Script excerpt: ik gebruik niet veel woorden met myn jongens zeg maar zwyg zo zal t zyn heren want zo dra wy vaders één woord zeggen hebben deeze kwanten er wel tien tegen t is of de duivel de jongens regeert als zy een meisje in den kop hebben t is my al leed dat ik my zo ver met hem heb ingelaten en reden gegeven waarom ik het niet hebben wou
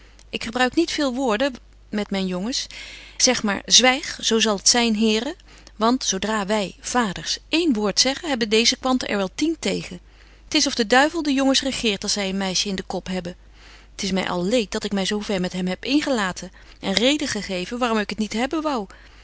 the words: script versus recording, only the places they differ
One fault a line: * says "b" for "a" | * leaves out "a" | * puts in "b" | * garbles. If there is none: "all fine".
all fine